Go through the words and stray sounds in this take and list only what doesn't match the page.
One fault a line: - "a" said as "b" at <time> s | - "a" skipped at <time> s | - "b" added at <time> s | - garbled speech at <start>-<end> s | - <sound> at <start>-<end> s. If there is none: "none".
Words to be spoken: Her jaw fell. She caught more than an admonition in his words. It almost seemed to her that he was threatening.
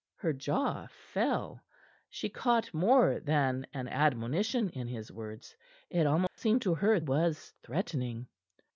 - dropout at 6.3-6.4 s
- "that he" skipped at 7.0 s